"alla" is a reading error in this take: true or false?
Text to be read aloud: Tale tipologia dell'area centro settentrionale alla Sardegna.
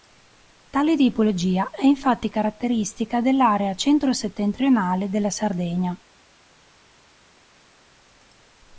true